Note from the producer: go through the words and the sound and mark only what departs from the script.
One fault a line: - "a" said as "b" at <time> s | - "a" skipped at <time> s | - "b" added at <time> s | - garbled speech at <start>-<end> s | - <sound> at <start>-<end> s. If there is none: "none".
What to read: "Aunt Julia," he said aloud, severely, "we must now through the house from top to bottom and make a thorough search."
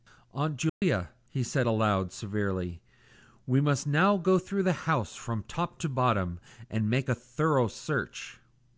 - dropout at 0.7-0.8 s
- "go" added at 4.2 s